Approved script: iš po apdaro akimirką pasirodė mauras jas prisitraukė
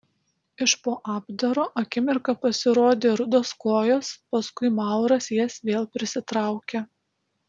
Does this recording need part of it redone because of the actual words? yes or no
yes